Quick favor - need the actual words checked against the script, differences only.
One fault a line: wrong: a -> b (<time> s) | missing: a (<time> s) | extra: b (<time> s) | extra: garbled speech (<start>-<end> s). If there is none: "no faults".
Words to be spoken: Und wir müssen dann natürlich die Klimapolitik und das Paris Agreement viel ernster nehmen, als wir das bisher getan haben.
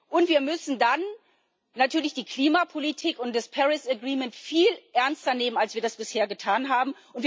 no faults